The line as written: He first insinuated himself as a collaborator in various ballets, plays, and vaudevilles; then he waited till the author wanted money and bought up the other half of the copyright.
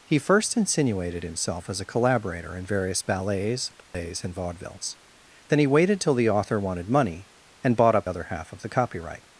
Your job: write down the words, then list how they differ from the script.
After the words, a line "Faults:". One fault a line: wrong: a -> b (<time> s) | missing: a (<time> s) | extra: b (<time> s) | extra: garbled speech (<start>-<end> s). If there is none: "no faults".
He first insinuated himself as a collaborator in various ballets, plays, and vaudevilles; then he waited till the author wanted money and bought up other half of the copyright.
Faults:
missing: the (8.1 s)